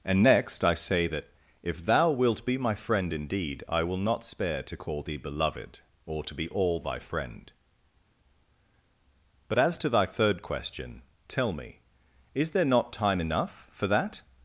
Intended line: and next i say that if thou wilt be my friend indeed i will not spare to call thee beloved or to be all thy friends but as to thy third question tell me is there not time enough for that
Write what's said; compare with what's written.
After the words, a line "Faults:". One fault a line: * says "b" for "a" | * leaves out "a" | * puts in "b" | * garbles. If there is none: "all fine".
and next i say that if thou wilt be my friend indeed i will not spare to call thee beloved or to be all thy friend but as to thy third question tell me is there not time enough for that
Faults:
* says "friend" for "friends"